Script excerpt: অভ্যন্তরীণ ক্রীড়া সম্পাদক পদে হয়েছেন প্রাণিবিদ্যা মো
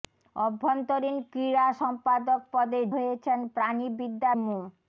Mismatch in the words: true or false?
false